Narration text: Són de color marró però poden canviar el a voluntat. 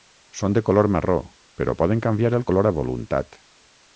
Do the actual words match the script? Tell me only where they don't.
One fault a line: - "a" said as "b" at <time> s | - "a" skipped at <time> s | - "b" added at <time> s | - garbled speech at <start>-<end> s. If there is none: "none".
- "color" added at 2.5 s